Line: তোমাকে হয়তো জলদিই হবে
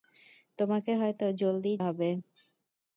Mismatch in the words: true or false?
false